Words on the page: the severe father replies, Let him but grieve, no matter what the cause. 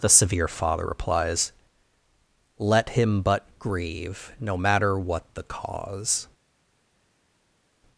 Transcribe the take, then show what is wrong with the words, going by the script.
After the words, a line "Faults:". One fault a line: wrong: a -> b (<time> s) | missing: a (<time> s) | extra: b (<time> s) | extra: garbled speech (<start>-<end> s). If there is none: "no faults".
the severe father replies, Let him but grieve, no matter what the cause.
Faults:
no faults